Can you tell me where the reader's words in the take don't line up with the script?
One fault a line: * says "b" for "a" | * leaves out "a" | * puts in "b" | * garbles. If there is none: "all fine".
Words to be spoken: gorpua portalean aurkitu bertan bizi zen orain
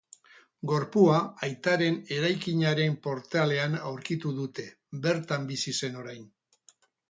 * puts in "aitaren eraikinaren"
* puts in "dute"